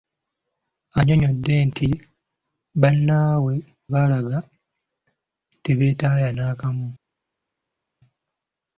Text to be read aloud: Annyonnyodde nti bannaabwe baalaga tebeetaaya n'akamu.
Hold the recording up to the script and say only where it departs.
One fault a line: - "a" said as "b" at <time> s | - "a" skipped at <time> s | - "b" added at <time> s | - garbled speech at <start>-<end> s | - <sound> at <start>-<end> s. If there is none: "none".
none